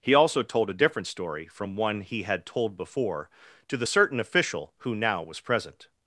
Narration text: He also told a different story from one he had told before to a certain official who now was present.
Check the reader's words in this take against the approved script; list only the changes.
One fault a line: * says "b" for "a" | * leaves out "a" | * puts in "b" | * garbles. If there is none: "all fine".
* says "the" for "a"